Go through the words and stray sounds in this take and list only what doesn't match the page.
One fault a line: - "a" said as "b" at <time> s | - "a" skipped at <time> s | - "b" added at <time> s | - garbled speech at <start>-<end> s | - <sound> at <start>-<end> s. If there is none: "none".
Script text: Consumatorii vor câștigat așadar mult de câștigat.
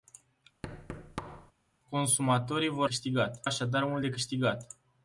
- thud at 0.6-1.5 s